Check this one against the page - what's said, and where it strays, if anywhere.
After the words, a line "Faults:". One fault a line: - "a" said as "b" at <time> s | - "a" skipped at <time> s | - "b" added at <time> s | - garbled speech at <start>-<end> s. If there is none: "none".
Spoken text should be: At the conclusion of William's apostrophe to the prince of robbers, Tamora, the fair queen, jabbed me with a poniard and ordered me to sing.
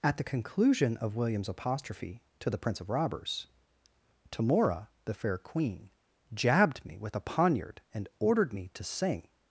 At the conclusion of William's apostrophe to the prince of robbers, Tamora, the fair queen, jabbed me with a poniard and ordered me to sing.
Faults:
none